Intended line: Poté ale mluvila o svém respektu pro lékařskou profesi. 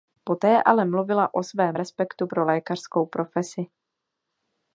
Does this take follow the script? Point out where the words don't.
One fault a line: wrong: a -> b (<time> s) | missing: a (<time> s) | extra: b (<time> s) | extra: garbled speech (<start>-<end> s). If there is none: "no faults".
no faults